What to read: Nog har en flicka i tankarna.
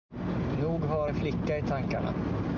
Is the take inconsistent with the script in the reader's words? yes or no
no